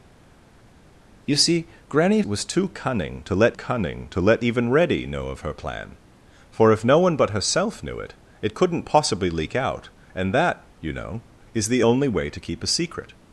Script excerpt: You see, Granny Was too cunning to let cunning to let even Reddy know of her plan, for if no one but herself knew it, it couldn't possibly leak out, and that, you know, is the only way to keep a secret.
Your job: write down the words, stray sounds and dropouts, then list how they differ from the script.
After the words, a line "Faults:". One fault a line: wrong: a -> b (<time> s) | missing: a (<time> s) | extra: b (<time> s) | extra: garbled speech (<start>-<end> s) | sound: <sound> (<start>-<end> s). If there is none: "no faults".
You see, Granny Was too cunning to let cunning to let even Reddy know of her plan, for if no one but herself knew it, it couldn't possibly leak out, and that, you know, is the only way to keep a secret.
Faults:
no faults